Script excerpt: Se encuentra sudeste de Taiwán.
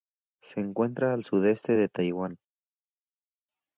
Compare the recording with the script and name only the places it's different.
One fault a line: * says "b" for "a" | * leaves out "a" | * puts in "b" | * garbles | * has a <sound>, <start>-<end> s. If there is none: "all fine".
* puts in "al"